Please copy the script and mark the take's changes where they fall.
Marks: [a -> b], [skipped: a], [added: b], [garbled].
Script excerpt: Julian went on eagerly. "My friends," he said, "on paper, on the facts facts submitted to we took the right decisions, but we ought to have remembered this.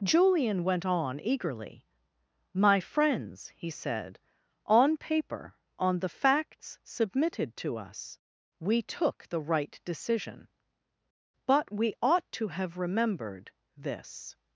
Julian went on eagerly. "My friends," he said, "on paper, on the facts [skipped: facts] submitted to [added: us] we took the right [decisions, -> decision] but we ought to have remembered this.